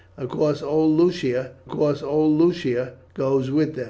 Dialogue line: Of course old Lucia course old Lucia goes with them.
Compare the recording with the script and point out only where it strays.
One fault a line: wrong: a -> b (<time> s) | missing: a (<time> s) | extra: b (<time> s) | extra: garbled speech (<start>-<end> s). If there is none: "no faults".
no faults